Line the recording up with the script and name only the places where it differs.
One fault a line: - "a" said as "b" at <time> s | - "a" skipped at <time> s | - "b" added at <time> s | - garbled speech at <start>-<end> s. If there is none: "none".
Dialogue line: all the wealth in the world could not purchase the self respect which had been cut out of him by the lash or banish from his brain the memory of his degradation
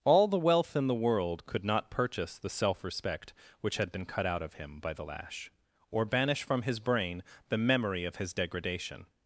none